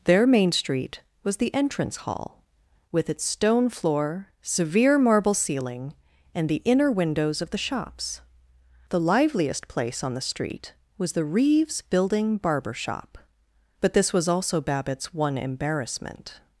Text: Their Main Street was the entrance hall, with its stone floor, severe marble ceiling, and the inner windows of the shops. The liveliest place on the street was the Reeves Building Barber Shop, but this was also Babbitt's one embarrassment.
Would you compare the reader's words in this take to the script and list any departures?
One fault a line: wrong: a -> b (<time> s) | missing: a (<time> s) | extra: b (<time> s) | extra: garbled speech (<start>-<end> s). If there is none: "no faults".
no faults